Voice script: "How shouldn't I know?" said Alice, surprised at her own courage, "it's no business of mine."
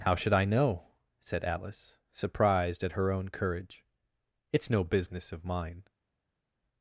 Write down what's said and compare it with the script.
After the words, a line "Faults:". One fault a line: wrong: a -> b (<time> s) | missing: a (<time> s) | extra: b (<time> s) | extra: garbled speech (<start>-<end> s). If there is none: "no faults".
"How should I know?" said Alice, surprised at her own courage, "it's no business of mine."
Faults:
wrong: shouldn't -> should (0.1 s)